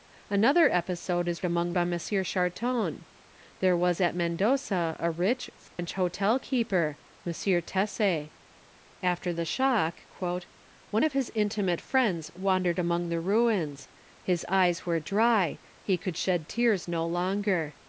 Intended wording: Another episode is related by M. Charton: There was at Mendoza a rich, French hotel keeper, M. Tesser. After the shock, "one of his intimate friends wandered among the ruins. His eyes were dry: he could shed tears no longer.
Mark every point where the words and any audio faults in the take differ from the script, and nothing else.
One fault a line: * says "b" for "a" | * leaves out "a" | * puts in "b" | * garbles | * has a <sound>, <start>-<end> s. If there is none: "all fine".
* says "among" for "related"
* has a dropout, 5.7-5.8 s